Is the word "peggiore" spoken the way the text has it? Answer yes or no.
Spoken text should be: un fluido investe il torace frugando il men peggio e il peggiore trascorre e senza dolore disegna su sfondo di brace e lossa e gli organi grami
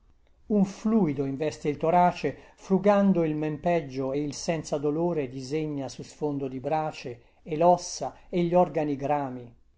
no